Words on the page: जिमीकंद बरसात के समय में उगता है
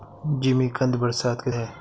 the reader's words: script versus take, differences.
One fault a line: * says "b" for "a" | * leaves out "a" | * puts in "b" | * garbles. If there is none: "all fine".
* leaves out "समय में उगता"